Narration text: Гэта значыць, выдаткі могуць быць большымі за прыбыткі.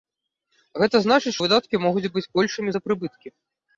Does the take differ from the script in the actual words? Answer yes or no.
no